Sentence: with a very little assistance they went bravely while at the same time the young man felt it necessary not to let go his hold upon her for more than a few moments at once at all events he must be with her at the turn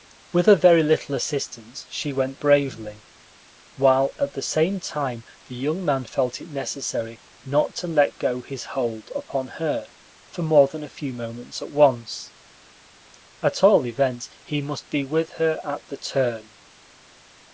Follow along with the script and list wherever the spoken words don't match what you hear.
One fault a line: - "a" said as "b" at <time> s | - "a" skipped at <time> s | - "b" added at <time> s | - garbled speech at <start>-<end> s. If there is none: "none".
- "they" said as "she" at 1.9 s